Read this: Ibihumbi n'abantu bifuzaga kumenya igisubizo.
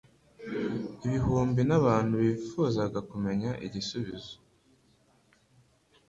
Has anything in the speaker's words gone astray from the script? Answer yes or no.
no